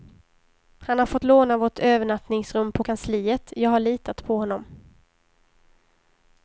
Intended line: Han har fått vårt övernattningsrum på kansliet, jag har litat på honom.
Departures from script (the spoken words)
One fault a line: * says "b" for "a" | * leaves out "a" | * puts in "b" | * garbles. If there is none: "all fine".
* puts in "låna"